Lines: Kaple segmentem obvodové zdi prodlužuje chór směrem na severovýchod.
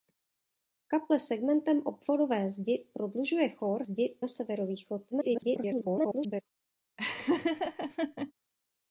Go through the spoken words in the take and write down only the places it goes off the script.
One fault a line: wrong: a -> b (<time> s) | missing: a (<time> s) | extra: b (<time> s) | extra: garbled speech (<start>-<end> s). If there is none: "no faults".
wrong: směrem -> zdi (3.8 s)
extra: garbled speech (5.1-6.4 s)